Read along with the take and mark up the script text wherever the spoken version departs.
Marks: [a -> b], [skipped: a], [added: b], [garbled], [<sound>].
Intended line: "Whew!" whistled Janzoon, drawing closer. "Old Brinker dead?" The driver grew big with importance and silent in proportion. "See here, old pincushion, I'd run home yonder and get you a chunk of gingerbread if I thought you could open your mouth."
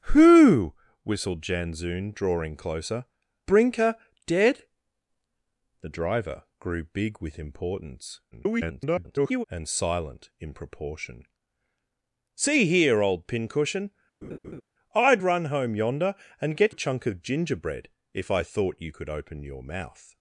"Whew!" whistled Janzoon, drawing closer. [skipped: "Old] Brinker dead?" The driver grew big with importance [garbled] and silent in proportion. "See here, old pincushion, [laugh] I'd run home yonder and get [skipped: you] a chunk of gingerbread if I thought you could open your mouth."